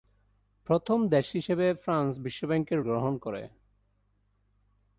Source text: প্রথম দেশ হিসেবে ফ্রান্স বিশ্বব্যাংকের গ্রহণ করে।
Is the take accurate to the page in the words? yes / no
yes